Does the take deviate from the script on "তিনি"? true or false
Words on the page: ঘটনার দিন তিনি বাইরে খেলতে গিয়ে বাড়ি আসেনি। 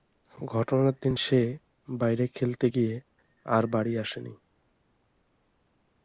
true